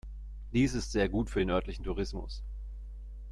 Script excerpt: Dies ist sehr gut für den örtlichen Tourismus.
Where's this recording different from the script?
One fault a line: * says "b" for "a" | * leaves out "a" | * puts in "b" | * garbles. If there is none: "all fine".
all fine